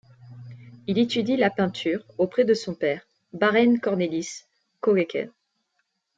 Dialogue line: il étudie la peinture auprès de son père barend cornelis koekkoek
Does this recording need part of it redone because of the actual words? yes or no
no